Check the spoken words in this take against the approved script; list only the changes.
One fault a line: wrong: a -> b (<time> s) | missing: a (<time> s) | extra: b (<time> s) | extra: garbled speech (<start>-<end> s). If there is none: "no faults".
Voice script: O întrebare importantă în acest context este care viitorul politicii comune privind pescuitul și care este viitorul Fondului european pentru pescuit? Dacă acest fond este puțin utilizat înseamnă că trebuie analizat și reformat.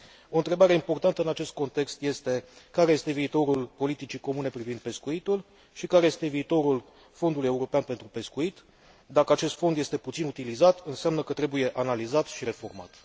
extra: este (2.9 s)